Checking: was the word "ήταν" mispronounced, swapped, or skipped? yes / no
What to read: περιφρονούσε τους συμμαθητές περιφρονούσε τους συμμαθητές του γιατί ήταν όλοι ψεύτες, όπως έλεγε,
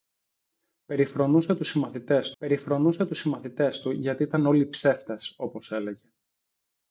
no